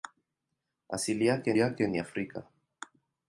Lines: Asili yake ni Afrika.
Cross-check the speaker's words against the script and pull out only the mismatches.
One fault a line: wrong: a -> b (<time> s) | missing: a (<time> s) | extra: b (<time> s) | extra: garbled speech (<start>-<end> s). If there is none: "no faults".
extra: yake (1.6 s)